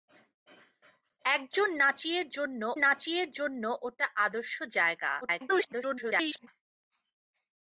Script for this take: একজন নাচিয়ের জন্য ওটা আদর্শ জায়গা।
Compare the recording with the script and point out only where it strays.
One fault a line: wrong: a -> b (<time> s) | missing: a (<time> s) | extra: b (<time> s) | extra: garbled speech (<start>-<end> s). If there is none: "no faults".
extra: নাচিয়ের জন্য (2.8 s)
extra: garbled speech (5.2-6.5 s)